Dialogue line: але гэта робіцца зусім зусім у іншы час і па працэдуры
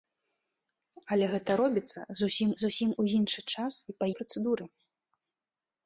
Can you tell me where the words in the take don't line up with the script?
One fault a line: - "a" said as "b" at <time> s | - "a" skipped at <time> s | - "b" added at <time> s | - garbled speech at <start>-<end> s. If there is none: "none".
none